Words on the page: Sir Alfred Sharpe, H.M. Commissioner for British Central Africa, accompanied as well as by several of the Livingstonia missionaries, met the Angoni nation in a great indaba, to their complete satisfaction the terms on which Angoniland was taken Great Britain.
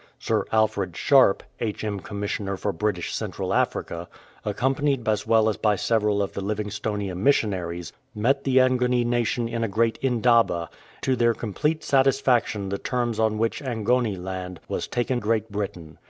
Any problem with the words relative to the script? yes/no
no